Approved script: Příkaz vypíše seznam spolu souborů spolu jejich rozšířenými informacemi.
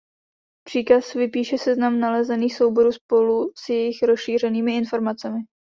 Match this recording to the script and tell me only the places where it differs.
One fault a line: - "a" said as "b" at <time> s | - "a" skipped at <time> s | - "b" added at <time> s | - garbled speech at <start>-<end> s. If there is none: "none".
- "spolu" said as "nalezených" at 2.0 s
- "s" added at 3.6 s